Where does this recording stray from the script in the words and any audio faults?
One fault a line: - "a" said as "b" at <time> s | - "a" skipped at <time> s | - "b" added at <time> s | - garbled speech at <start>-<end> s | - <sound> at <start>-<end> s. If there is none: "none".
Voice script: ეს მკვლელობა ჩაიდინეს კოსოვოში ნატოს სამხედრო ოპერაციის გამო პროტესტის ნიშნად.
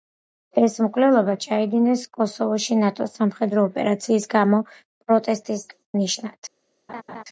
- laugh at 6.9-7.2 s